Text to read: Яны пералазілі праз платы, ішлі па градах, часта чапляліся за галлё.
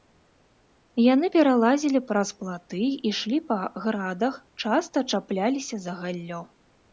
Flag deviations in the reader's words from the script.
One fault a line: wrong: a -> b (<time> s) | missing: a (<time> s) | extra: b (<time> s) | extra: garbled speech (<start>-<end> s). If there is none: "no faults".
no faults